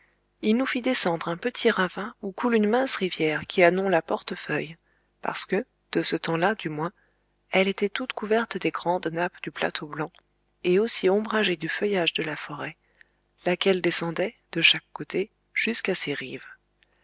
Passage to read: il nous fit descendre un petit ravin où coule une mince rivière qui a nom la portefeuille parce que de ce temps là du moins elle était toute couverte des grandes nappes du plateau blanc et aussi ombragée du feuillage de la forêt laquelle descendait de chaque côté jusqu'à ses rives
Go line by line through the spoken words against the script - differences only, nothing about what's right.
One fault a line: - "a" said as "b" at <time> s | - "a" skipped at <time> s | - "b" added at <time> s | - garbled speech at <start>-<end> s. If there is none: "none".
none